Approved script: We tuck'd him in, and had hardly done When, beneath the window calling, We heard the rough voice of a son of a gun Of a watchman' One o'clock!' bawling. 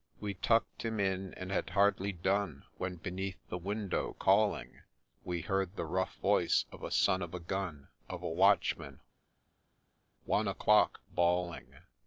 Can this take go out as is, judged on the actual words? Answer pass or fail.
pass